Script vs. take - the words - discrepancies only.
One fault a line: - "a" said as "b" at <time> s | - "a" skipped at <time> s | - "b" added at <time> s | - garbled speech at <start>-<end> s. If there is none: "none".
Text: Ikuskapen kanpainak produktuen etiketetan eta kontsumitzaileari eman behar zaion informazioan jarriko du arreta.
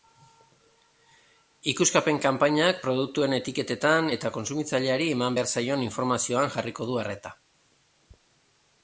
none